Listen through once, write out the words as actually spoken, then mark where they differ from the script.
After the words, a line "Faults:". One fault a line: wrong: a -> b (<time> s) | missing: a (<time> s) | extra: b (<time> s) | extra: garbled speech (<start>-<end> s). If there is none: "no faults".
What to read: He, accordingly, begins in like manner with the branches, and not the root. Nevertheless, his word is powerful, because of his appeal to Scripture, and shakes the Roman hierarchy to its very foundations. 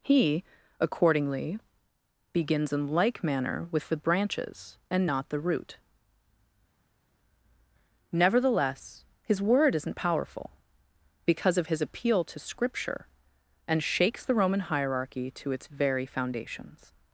He, accordingly, begins in like manner with the branches, and not the root. Nevertheless, his word isn't powerful, because of his appeal to Scripture, and shakes the Roman hierarchy to its very foundations.
Faults:
wrong: is -> isn't (9.7 s)